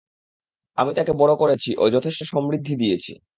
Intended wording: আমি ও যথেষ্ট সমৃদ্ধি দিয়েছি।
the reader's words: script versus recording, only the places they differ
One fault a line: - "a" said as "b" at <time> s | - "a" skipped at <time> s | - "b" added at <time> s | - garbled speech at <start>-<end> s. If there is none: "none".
- "তাকে বড় করেছি" added at 1.0 s